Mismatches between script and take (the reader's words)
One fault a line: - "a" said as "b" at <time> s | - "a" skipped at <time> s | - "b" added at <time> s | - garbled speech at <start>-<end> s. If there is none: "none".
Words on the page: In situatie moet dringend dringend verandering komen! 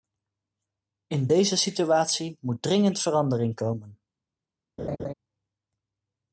- "deze" added at 1.2 s
- "dringend" skipped at 3.0 s